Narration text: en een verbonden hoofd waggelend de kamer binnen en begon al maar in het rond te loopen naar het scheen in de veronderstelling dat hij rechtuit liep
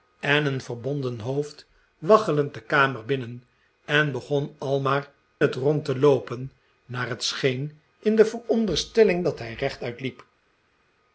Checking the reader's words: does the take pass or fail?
fail